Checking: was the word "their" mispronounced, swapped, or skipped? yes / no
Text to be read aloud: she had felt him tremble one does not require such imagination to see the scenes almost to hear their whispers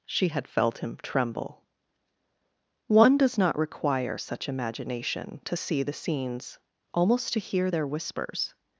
no